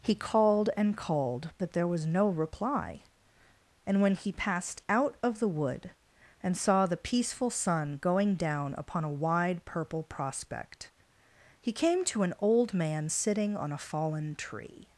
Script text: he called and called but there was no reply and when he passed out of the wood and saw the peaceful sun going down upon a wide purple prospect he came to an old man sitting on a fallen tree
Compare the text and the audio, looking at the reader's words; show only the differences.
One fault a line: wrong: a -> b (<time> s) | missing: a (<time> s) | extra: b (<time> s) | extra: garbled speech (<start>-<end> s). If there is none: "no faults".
no faults